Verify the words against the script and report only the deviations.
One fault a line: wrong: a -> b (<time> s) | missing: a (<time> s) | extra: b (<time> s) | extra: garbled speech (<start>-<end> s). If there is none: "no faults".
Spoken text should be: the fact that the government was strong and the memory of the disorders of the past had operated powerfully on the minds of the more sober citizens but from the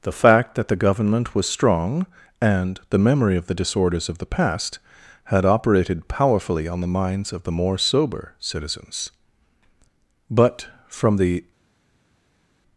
no faults